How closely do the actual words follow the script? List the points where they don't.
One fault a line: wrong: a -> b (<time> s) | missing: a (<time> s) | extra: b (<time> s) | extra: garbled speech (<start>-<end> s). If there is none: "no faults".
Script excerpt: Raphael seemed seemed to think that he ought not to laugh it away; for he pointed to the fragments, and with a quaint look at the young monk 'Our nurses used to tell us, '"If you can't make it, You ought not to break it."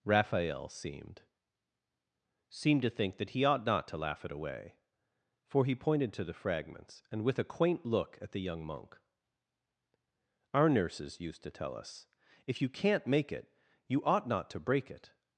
no faults